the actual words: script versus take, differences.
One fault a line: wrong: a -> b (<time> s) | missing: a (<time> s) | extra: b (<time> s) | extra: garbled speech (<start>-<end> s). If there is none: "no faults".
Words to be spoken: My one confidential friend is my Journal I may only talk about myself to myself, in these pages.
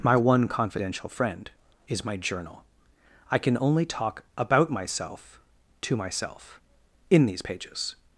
wrong: may -> can (3.4 s)